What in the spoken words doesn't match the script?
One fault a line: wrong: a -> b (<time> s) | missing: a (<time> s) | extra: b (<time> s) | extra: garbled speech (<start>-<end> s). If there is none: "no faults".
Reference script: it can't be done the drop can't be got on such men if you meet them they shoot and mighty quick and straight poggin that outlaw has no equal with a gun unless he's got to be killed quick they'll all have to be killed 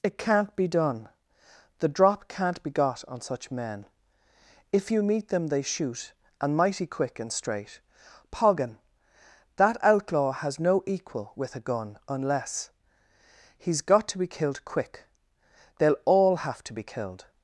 no faults